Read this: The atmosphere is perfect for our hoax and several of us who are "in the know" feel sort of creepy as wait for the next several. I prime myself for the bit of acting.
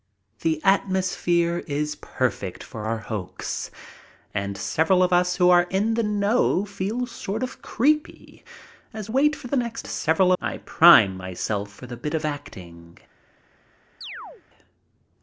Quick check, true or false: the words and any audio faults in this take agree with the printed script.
false